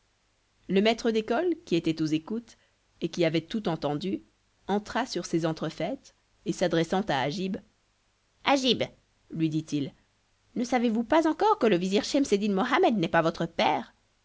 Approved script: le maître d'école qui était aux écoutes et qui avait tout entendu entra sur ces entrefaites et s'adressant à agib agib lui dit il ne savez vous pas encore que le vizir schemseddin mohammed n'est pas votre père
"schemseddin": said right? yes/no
yes